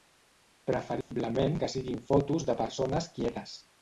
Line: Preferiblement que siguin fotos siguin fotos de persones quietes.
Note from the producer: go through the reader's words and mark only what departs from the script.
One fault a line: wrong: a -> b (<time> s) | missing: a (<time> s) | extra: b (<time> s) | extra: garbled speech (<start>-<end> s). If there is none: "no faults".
missing: siguin fotos (2.5 s)